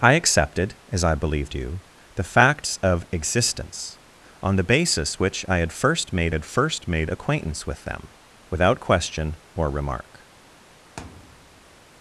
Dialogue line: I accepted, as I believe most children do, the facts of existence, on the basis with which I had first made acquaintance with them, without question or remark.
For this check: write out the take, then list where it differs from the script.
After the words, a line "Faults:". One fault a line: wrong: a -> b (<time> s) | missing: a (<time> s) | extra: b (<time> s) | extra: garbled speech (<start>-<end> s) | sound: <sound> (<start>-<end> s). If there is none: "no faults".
I accepted, as I believe do, the facts of existence, on the basis which I had first made had first made acquaintance with them, without question or remark.
Faults:
missing: most children (1.5 s)
missing: with (5.2 s)
extra: had first made (6.3 s)
sound: thud (11.0-11.8 s)